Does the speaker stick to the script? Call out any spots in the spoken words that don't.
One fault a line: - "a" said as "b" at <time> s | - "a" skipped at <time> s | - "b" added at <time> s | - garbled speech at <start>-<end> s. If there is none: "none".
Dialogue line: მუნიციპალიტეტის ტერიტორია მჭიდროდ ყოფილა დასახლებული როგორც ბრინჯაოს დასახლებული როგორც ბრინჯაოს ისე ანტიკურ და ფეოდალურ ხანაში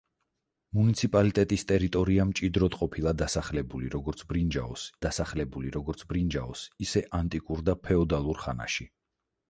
none